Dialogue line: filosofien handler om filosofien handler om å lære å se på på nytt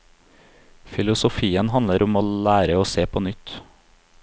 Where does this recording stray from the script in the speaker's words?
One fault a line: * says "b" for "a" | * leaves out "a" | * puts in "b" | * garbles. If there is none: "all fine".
* leaves out "filosofien handler om"
* leaves out "på"